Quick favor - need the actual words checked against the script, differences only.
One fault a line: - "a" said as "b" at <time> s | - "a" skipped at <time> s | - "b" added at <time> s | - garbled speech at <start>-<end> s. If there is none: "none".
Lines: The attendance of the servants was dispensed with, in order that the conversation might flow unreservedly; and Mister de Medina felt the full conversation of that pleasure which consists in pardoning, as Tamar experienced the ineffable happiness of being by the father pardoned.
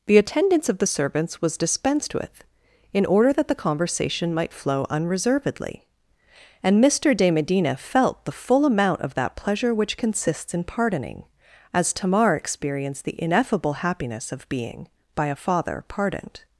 - "conversation" said as "amount" at 8.6 s
- "the" said as "a" at 15.3 s